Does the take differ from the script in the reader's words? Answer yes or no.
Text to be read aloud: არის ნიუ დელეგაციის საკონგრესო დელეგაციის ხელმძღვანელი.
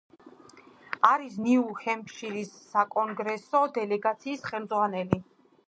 yes